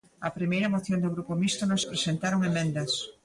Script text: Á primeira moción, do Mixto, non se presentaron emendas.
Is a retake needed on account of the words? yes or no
yes